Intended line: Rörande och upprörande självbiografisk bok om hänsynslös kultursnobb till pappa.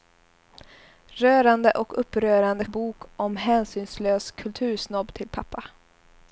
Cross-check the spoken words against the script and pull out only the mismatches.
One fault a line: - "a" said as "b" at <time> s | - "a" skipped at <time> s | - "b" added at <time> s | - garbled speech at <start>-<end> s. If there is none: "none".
- "självbiografisk" skipped at 2.6 s